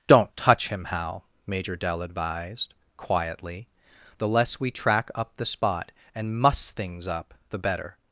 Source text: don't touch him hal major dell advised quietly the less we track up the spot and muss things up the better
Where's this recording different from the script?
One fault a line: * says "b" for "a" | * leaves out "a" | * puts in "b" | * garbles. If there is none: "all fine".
all fine